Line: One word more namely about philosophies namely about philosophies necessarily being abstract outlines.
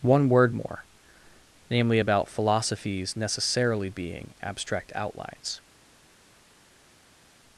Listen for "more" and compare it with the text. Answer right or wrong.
right